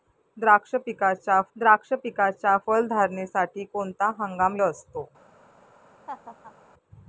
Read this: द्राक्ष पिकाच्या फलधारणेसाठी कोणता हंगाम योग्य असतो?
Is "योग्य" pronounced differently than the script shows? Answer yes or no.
yes